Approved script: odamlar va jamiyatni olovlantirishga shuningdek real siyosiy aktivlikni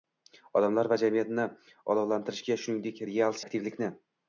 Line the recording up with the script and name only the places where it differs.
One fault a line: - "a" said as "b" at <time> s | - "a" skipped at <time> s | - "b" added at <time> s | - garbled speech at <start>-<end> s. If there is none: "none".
- "siyosiy" skipped at 3.4 s